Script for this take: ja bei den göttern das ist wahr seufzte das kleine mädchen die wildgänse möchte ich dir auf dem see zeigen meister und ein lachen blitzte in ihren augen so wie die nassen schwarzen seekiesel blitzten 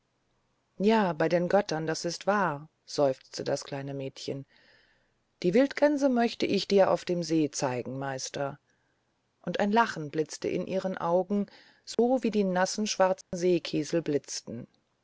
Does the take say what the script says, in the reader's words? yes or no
yes